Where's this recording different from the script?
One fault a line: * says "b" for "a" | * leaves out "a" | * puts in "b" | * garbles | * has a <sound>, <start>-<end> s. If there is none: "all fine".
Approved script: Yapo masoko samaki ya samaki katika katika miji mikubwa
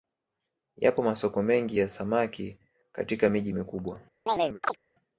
* says "mengi" for "samaki"
* leaves out "katika"
* has a chirp, 4.3-4.8 s